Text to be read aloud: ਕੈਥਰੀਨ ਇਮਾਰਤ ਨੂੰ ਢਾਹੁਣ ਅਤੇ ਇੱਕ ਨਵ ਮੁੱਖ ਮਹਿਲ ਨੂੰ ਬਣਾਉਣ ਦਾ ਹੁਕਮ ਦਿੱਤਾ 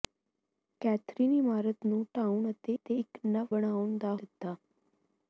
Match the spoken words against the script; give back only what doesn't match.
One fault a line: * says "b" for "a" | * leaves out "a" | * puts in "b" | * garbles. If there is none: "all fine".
* puts in "ਅਤੇ"
* leaves out "ਮੁੱਖ ਮਹਿਲ ਨੂੰ"
* leaves out "ਹੁਕਮ"